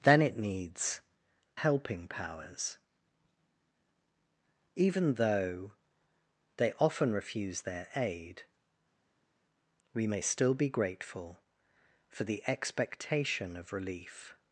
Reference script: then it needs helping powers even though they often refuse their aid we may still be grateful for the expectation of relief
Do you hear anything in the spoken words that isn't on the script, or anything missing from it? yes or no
no